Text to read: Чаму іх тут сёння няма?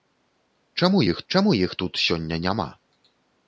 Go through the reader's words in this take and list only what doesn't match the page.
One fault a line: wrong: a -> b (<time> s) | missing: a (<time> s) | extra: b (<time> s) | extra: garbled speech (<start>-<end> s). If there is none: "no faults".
extra: чаму іх (1.3 s)